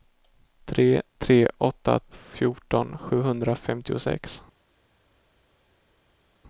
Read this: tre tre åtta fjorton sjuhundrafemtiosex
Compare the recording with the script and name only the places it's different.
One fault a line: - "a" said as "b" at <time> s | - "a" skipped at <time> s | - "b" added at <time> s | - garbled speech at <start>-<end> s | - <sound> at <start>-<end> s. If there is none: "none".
none